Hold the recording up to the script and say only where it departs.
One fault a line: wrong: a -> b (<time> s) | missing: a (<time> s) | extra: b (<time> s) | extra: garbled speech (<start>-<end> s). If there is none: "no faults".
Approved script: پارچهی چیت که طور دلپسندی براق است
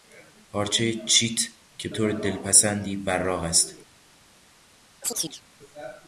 no faults